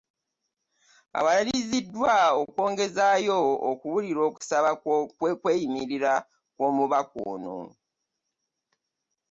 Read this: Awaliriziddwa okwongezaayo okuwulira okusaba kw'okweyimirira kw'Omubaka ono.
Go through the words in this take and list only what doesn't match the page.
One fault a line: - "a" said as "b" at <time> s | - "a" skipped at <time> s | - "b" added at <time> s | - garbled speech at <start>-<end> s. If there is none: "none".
none